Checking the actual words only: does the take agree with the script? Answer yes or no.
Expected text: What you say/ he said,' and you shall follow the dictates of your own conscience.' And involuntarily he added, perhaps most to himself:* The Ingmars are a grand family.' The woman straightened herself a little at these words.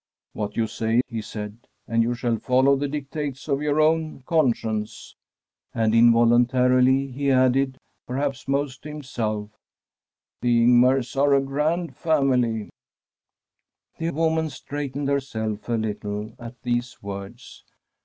yes